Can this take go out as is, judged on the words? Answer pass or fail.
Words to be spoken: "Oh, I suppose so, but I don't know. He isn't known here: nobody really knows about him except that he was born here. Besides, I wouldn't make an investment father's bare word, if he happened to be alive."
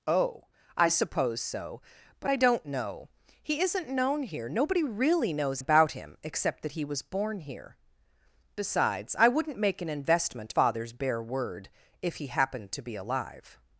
pass